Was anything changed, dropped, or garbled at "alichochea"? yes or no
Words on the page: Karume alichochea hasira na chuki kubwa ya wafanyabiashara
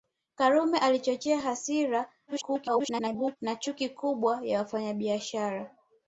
no